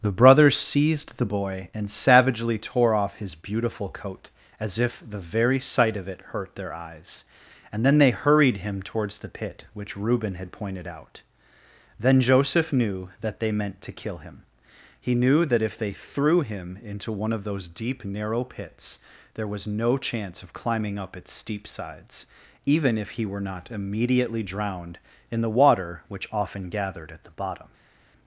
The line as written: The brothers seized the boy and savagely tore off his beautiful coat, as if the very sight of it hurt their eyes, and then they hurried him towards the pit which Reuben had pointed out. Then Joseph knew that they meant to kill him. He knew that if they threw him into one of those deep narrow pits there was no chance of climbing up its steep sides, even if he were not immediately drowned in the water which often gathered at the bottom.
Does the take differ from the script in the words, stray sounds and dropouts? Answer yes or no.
no